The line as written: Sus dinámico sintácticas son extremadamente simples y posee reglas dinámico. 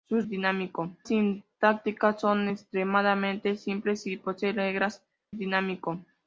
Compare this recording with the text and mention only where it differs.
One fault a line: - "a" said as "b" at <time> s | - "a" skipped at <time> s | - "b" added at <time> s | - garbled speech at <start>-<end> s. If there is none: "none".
none